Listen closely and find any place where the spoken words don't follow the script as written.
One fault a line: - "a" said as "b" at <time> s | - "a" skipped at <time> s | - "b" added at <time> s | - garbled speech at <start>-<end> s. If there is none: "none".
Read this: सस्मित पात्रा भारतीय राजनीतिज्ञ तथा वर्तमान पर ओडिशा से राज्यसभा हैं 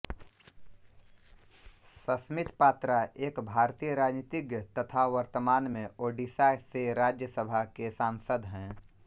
- "एक" added at 3.3 s
- "पर" said as "में" at 5.7 s
- "के सांसद" added at 7.8 s